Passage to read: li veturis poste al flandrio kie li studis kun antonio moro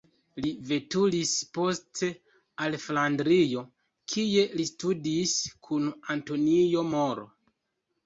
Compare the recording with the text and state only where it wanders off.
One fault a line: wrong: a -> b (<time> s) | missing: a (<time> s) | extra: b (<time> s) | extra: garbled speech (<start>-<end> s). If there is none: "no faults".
no faults